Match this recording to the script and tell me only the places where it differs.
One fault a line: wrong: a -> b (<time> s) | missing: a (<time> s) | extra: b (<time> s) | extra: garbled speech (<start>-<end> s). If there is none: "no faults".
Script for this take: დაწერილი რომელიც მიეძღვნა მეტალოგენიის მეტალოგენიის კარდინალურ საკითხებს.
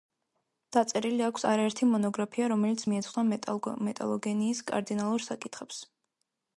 extra: აქვს არაერთი მონოგრაფია (1.3 s)
missing: მეტალოგენიის (4.6 s)